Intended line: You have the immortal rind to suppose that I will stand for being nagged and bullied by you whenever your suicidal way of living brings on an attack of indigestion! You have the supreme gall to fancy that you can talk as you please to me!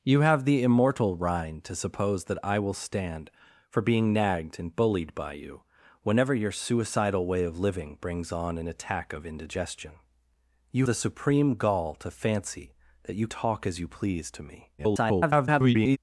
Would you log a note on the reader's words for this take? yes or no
yes